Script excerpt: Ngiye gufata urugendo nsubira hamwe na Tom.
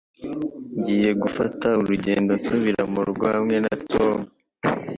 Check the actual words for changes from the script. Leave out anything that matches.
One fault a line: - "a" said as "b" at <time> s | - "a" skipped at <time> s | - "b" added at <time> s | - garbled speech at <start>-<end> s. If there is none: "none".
- "murugo" added at 2.9 s